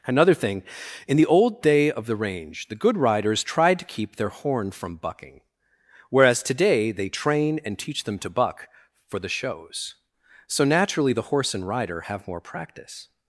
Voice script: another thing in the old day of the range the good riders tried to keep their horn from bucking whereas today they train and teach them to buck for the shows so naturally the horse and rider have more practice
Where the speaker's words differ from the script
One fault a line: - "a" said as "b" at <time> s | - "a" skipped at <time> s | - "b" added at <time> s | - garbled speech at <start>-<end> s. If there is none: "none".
none